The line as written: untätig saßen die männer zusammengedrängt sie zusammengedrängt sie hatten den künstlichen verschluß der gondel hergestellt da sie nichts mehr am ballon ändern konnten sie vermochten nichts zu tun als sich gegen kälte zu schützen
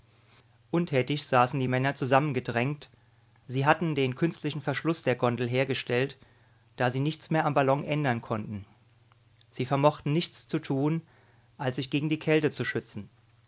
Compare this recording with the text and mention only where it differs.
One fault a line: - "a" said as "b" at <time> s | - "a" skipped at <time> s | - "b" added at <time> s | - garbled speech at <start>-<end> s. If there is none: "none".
- "zusammengedrängt sie" skipped at 3.7 s
- "die" added at 12.1 s